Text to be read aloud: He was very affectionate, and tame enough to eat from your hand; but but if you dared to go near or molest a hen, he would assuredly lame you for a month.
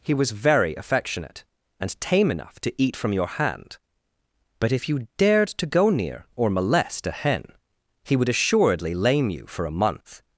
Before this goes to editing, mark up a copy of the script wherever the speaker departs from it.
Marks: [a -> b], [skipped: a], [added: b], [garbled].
He was very affectionate, and tame enough to eat from your hand; but [skipped: but] if you dared to go near or molest a hen, he would assuredly lame you for a month.